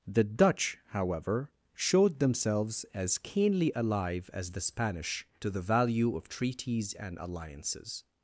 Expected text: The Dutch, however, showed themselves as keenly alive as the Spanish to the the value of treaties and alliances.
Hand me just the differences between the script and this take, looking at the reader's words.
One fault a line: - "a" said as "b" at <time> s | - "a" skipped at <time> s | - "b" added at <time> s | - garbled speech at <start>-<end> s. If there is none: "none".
- "the" skipped at 5.6 s